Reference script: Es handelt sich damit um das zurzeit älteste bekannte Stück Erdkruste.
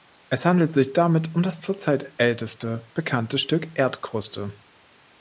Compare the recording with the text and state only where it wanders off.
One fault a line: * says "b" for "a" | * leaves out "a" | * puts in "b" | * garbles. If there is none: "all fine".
all fine